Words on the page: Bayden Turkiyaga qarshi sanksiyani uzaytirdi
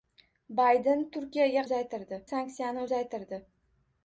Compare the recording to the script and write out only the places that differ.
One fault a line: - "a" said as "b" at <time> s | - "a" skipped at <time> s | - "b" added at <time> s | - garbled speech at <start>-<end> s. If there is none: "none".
- "qarshi" said as "uzaytirdi" at 1.7 s